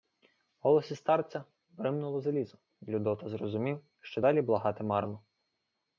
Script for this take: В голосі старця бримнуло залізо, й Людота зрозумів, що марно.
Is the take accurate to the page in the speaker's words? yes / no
no